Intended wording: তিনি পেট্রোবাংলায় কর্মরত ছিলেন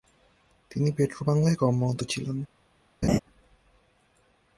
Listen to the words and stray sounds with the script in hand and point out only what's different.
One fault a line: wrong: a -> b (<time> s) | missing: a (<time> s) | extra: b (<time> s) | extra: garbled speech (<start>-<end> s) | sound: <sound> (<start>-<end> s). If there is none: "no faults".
sound: laugh (3.0-3.2 s)